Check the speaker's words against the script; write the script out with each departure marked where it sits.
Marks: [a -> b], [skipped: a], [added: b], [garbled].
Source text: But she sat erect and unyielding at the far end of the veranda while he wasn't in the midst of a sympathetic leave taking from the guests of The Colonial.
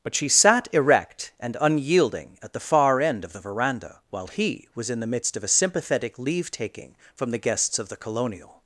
But she sat erect and unyielding at the far end of the veranda while he [wasn't -> was] in the midst of a sympathetic leave taking from the guests of The Colonial.